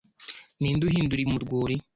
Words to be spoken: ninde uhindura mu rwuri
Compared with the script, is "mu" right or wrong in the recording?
right